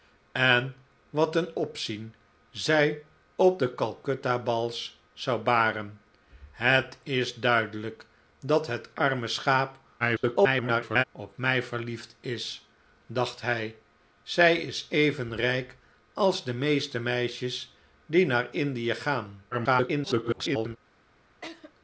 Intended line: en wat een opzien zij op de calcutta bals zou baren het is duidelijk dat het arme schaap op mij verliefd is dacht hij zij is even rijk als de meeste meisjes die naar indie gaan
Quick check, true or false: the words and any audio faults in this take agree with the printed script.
false